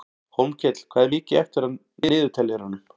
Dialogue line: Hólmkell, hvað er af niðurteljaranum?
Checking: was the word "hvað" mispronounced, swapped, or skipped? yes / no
no